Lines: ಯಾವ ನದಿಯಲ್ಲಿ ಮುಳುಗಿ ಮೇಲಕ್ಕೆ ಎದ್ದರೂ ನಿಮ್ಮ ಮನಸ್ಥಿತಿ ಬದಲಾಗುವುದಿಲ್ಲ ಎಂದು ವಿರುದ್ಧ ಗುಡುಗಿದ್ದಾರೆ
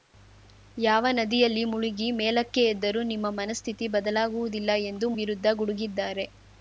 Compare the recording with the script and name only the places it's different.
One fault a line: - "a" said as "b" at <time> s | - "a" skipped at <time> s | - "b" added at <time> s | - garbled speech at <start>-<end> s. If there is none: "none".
none